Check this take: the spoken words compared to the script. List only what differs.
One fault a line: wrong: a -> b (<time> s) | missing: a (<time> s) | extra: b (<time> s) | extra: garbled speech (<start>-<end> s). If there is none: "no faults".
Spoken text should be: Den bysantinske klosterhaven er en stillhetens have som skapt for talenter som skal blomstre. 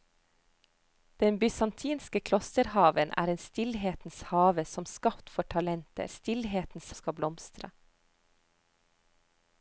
wrong: som -> stillhetens (6.1 s)